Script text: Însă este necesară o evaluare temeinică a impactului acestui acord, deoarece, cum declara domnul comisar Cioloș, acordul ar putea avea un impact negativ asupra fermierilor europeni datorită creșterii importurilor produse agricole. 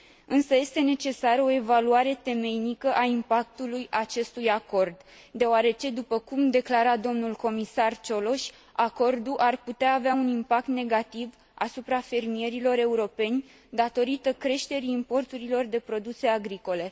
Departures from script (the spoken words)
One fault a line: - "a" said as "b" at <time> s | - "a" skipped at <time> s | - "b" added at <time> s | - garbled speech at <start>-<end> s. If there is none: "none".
- "după" added at 5.9 s
- "de" added at 15.7 s